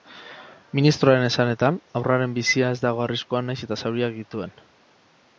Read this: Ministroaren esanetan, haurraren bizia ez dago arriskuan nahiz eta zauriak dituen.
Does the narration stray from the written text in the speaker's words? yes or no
no